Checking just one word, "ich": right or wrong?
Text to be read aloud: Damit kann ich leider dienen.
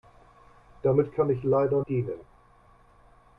right